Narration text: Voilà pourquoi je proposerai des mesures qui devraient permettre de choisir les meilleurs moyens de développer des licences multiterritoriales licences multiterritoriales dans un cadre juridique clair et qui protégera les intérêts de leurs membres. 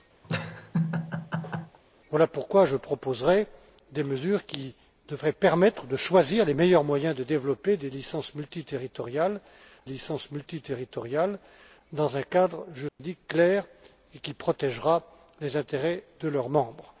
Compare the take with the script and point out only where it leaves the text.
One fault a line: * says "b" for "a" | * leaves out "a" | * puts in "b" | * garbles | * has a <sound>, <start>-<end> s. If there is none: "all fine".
* has a laugh, 0.2-1.8 s
* has a dropout, 12.9-13.0 s